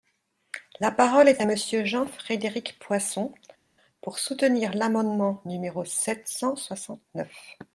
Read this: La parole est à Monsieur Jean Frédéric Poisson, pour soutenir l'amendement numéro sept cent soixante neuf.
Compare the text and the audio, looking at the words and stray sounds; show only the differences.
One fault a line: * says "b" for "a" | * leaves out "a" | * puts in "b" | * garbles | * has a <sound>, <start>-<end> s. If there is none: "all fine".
all fine